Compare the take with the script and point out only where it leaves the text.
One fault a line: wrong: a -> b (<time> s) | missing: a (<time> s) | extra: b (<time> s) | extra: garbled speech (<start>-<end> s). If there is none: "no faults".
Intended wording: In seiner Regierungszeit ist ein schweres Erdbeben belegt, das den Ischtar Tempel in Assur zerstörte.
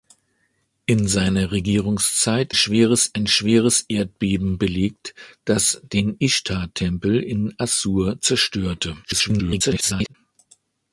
wrong: ist -> schweres (2.5 s)
extra: garbled speech (9.0-10.1 s)